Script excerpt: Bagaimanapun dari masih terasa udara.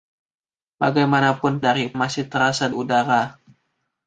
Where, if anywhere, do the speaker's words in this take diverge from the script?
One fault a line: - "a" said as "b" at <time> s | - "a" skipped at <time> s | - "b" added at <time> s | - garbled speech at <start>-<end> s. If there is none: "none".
none